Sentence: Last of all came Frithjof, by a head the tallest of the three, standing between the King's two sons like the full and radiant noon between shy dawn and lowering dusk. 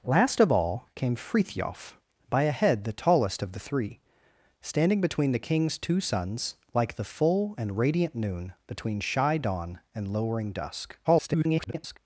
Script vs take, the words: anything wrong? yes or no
yes